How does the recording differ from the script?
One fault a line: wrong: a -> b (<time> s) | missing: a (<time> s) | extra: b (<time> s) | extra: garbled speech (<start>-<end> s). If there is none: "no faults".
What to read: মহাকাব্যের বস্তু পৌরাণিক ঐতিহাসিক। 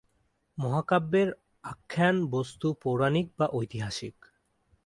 extra: আখ্যান (1.6 s)
extra: বা (3.4 s)